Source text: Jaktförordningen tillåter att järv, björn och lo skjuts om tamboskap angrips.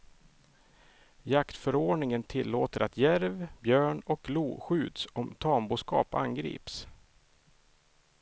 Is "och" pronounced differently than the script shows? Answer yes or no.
no